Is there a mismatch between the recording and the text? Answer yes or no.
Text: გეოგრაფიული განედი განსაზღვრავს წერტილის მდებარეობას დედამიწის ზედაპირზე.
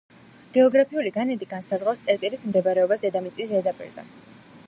no